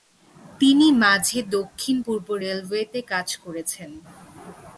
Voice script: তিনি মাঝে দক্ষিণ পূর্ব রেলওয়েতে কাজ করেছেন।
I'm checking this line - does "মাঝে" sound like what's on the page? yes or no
yes